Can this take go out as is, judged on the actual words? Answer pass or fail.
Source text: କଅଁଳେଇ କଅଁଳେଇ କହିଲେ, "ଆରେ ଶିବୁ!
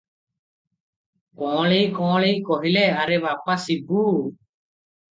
fail